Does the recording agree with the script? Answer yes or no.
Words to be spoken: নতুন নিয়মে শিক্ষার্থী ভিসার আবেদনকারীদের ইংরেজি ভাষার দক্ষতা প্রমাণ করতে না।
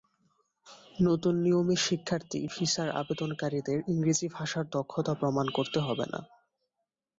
no